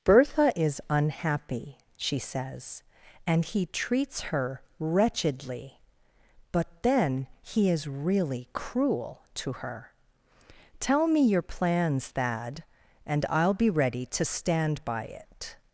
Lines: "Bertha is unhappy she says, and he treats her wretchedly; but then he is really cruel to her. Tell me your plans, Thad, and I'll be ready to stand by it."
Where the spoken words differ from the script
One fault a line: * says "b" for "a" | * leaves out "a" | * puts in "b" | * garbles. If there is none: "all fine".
all fine